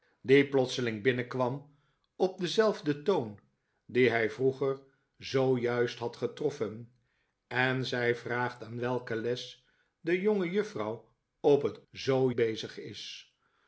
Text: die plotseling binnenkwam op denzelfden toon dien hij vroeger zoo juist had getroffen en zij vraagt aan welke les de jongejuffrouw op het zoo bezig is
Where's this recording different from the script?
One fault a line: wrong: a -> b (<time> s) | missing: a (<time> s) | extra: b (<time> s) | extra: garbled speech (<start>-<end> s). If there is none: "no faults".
no faults